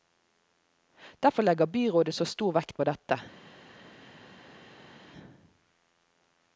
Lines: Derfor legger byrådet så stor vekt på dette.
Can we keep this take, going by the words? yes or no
yes